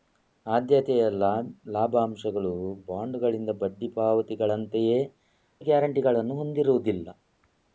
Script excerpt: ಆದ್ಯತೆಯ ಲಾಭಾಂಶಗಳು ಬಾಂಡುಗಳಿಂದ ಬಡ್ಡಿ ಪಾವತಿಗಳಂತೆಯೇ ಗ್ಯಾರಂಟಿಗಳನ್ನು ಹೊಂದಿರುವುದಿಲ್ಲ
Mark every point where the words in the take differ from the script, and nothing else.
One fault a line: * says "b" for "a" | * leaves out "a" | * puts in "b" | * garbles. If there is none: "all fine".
all fine